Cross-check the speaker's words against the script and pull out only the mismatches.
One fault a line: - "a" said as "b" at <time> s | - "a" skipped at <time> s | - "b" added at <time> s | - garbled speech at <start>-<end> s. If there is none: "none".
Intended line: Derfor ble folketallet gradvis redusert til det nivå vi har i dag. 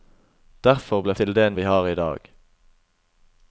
- "folketallet gradvis redusert" skipped at 1.2 s
- "nivå" skipped at 1.5 s